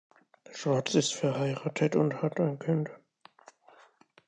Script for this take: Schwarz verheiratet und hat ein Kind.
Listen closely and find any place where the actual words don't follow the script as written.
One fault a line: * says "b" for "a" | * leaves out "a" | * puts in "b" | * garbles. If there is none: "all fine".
* puts in "ist"